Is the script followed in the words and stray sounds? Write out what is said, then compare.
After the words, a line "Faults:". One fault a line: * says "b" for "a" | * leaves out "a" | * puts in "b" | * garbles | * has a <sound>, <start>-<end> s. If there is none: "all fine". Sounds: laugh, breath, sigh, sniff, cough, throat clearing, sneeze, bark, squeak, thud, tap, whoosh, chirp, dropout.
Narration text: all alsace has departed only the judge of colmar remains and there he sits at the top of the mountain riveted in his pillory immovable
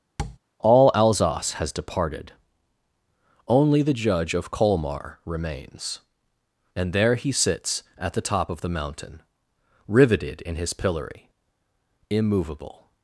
all alsace has departed only the judge of colmar remains and there he sits at the top of the mountain riveted in his pillory immovable
Faults:
* has a tap, 0.2-0.4 s